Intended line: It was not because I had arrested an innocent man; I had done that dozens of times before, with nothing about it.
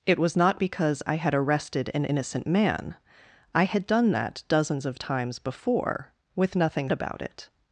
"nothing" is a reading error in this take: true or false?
false